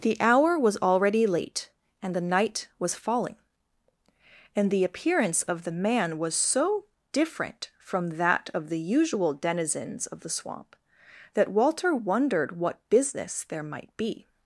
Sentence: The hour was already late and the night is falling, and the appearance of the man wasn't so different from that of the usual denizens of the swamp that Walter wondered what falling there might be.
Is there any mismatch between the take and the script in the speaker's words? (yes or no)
yes